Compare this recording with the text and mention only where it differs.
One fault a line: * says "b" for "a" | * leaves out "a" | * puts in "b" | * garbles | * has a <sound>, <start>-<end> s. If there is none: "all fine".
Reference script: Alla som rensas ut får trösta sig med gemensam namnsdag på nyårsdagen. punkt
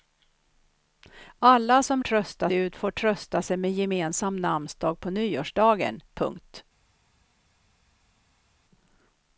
* says "trösta" for "rensas"